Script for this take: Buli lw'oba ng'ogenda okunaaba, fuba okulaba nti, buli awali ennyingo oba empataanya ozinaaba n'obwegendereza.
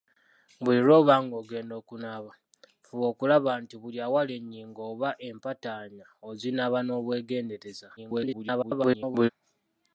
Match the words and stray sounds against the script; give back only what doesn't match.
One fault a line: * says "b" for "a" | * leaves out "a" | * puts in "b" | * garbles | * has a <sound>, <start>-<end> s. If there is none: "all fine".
* garbles